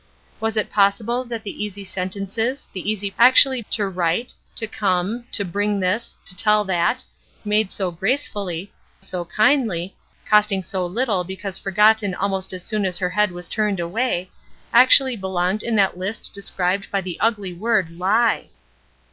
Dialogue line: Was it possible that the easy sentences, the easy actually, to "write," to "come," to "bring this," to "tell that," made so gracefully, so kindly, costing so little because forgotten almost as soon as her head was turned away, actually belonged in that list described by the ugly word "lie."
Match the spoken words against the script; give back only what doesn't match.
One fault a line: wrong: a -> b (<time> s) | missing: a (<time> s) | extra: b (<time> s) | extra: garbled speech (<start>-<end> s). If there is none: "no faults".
no faults